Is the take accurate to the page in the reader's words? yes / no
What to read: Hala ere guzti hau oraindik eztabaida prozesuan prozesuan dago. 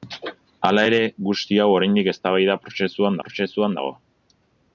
yes